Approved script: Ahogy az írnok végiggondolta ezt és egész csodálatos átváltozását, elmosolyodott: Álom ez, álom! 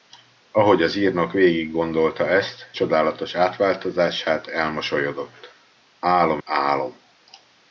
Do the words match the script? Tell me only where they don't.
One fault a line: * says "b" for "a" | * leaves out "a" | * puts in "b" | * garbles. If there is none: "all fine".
* leaves out "és egész"
* leaves out "ez"